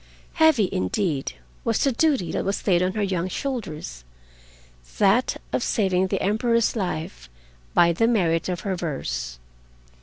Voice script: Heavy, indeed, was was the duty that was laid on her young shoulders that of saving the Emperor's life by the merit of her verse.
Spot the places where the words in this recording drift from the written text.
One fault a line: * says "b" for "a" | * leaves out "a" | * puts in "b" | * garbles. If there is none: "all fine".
* leaves out "was"